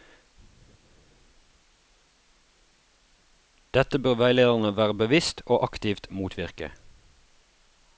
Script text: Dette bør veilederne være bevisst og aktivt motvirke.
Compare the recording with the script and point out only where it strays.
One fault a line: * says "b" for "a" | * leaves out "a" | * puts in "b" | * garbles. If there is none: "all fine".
all fine